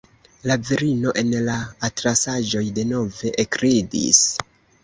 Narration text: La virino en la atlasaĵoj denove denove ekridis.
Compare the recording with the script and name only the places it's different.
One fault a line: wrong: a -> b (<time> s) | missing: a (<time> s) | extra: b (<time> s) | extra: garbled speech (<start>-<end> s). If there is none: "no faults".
missing: denove (3.3 s)